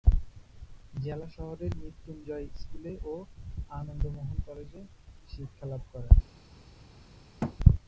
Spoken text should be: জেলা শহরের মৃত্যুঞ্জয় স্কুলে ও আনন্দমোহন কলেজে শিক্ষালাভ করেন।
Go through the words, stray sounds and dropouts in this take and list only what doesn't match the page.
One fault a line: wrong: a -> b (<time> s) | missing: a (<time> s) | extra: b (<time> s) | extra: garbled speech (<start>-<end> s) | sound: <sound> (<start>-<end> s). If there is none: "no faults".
sound: thud (7.4-7.6 s)